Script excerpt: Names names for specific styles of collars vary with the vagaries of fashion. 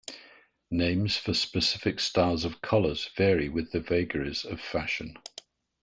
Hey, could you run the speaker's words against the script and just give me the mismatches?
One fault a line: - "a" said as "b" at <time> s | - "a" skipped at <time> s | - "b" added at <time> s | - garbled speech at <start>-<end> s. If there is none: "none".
- "names" skipped at 1.1 s